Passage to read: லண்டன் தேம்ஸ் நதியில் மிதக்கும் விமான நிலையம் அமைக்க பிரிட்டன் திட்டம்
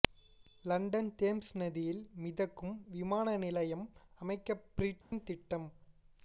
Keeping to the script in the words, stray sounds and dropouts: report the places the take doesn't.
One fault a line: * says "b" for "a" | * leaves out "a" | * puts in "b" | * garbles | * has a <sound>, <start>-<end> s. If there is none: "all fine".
* has a dropout, 5.0-5.1 s